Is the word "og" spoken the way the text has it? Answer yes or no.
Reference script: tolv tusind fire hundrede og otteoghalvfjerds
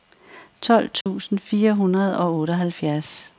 yes